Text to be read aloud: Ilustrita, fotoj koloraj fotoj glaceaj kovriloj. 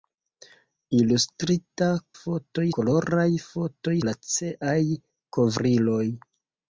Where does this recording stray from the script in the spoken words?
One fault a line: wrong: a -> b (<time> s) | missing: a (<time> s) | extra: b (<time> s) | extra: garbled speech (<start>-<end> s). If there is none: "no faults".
no faults